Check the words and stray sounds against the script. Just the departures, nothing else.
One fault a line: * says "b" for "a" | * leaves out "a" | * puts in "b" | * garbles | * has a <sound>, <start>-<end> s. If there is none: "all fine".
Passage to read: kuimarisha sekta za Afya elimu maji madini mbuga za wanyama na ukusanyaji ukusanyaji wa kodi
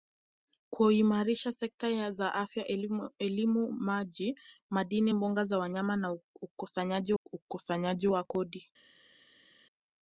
all fine